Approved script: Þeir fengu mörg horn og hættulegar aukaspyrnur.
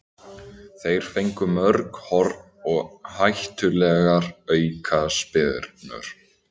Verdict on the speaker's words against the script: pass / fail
pass